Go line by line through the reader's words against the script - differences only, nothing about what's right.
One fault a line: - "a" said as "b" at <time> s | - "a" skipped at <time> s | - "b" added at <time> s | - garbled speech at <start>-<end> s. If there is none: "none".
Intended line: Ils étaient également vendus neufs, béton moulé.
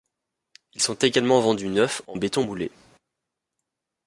- "étaient" said as "sont" at 0.8 s
- "en" added at 2.1 s